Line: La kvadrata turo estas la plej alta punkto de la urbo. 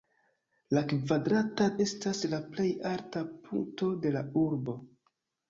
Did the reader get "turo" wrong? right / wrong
wrong